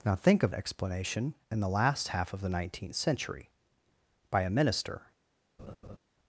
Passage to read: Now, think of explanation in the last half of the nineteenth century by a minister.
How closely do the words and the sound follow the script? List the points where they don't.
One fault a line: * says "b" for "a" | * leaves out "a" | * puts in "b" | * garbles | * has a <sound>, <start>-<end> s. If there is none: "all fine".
* has a laugh, 5.6-6.0 s